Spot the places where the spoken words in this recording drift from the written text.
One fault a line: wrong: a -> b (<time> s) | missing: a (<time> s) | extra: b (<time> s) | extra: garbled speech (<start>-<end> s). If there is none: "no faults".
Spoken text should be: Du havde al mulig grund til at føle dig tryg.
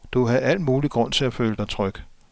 no faults